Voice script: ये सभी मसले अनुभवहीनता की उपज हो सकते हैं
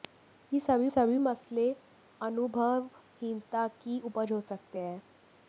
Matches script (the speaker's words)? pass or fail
fail